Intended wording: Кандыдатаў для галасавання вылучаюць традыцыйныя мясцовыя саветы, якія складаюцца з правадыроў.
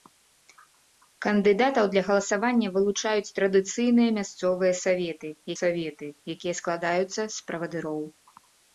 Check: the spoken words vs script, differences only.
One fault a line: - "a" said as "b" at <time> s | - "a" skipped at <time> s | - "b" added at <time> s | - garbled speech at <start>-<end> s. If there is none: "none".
- "саветы" added at 5.6 s